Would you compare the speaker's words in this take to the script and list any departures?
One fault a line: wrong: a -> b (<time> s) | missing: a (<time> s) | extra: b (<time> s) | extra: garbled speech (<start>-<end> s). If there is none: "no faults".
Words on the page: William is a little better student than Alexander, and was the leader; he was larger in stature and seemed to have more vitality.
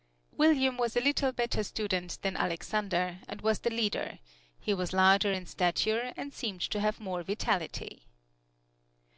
wrong: is -> was (0.8 s)